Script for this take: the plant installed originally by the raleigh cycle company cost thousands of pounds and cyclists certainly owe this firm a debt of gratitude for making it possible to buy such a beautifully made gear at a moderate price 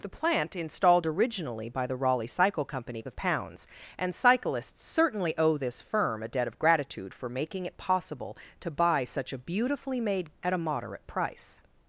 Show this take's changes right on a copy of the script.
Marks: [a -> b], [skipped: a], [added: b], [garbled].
the plant installed originally by the raleigh cycle company [skipped: cost thousands] of pounds and cyclists certainly owe this firm a debt of gratitude for making it possible to buy such a beautifully made [skipped: gear] at a moderate price